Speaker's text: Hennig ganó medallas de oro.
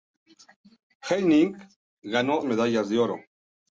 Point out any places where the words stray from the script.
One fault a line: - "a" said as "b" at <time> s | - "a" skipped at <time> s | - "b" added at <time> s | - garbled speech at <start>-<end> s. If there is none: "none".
none